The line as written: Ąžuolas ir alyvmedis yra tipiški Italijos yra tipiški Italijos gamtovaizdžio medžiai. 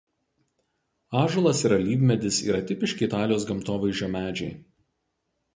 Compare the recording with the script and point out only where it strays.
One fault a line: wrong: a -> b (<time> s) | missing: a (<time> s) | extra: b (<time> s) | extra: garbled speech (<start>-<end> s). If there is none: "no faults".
missing: yra tipiški Italijos (3.5 s)